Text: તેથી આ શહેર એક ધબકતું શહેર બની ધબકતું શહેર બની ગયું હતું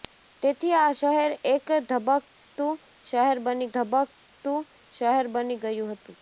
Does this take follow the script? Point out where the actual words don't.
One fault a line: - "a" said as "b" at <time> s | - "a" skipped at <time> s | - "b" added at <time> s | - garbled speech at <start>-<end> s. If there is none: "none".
none